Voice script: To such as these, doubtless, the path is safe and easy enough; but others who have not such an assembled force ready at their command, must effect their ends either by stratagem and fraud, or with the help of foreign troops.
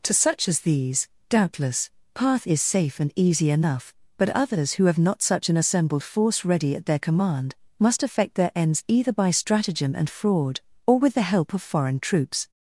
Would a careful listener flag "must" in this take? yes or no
no